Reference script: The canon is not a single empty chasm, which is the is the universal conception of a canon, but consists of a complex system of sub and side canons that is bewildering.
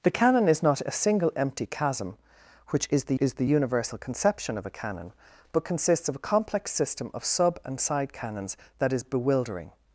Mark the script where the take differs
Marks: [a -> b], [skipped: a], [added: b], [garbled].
The canon is not a single empty chasm, which is the is the universal conception of a canon, but consists of a complex system of sub and side canons that is bewildering.